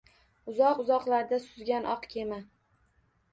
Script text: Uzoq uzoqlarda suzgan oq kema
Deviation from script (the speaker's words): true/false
false